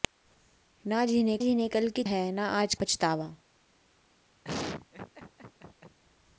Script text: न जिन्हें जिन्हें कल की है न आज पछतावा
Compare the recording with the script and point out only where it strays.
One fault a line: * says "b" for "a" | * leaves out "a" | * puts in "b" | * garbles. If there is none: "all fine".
all fine